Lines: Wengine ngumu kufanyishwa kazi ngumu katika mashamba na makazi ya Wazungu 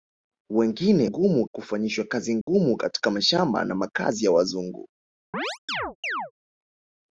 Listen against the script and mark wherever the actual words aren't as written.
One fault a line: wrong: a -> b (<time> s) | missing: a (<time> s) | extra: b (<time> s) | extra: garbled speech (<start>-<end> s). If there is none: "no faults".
no faults